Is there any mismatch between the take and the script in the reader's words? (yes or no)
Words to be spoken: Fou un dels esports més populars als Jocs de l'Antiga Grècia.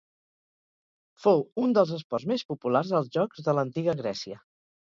no